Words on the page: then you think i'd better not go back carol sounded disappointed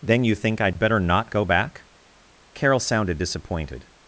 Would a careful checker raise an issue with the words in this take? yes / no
no